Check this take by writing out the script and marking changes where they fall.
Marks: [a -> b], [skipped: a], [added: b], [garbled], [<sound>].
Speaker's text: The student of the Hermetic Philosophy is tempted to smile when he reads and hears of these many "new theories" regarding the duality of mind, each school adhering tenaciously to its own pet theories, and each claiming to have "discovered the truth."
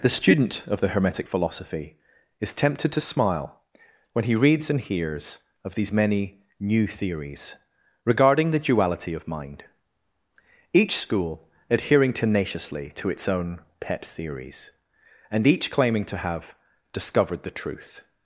The student of the Hermetic Philosophy is tempted to smile when he reads and hears of these many "new theories" regarding the duality of mind, each school adhering tenaciously to its own pet theories, and each claiming to have "discovered the truth."